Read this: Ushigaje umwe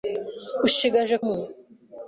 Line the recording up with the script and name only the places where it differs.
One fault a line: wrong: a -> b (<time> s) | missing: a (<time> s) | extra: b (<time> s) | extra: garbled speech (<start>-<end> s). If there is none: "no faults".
no faults